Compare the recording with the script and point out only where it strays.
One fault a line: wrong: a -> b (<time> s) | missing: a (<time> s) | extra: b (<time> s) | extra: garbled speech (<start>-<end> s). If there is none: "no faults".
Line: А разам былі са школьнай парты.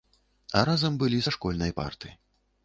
no faults